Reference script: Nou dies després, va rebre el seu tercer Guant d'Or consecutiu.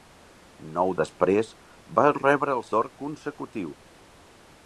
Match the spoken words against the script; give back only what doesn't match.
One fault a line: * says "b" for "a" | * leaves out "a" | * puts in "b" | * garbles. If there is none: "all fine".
* leaves out "dies"
* leaves out "seu tercer Guant"